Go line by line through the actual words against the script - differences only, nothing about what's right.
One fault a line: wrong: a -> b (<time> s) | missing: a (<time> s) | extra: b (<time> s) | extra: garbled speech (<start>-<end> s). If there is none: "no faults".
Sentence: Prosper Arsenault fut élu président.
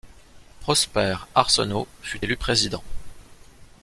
no faults